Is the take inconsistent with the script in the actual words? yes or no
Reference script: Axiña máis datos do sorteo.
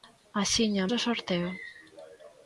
yes